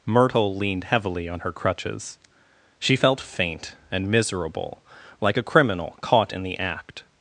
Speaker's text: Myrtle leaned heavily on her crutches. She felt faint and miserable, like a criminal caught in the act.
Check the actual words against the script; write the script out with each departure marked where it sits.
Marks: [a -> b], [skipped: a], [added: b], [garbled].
Myrtle leaned heavily on her crutches. She felt faint and miserable, like a criminal caught in the act.